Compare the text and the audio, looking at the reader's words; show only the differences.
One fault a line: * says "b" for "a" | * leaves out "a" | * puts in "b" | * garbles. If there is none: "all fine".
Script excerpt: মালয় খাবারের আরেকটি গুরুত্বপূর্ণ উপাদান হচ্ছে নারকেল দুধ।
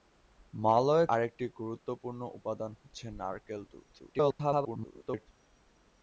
* leaves out "খাবারের"
* garbles